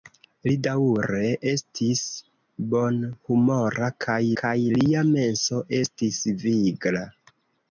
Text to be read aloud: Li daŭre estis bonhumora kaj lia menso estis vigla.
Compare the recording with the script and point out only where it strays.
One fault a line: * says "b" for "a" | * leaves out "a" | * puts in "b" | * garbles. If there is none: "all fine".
* puts in "kaj"